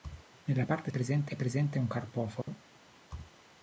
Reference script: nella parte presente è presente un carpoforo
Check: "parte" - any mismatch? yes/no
no